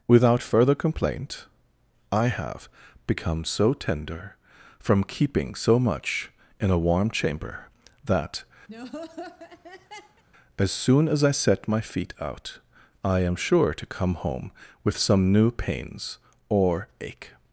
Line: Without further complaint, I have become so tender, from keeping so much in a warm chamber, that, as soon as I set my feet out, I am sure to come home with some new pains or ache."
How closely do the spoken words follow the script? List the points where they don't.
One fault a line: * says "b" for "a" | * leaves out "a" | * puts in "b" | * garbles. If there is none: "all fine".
all fine